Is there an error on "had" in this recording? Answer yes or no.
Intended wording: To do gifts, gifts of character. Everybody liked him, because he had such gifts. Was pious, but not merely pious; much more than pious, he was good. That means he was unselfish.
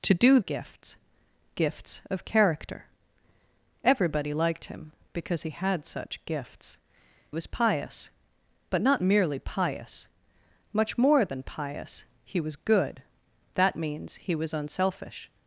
no